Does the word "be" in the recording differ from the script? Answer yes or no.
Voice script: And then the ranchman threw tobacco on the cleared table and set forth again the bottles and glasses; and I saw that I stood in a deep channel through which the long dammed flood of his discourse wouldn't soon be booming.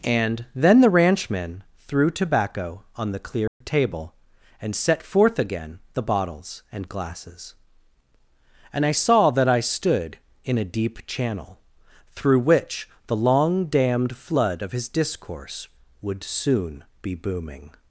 no